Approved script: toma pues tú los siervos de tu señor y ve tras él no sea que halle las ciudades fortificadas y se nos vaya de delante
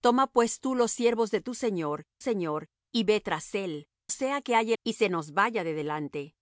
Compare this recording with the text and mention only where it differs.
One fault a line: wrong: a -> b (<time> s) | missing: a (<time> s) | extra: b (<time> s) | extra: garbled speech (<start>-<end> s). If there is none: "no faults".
extra: señor (2.2 s)
missing: no (3.9 s)
missing: las ciudades fortificadas (4.8 s)